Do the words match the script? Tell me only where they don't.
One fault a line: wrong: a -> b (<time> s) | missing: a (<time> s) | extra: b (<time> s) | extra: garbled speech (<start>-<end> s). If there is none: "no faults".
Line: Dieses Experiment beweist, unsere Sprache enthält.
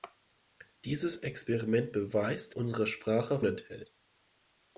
no faults